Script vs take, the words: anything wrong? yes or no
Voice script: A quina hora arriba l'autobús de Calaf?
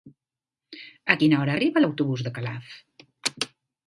no